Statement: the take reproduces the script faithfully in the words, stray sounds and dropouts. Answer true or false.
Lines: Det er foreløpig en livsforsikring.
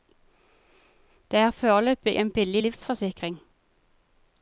false